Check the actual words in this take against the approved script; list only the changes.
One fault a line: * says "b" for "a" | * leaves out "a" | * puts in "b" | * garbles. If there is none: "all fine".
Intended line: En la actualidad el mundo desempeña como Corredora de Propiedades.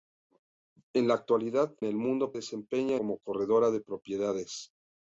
all fine